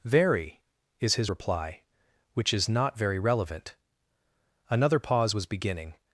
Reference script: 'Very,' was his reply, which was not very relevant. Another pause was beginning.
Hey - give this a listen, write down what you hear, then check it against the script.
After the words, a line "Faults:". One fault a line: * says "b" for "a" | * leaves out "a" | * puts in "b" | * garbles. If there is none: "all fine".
'Very,' is his reply, which is not very relevant. Another pause was beginning.
Faults:
* says "is" for "was"
* says "is" for "was"